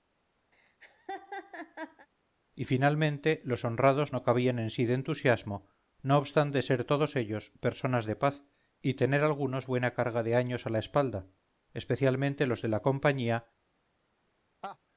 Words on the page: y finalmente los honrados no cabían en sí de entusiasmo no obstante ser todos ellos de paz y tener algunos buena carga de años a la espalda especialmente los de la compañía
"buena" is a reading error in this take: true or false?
false